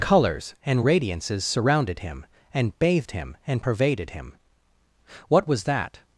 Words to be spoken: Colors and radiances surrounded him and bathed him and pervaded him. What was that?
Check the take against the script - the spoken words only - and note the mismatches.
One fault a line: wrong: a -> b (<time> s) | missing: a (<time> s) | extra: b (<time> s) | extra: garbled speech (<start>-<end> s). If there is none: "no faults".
no faults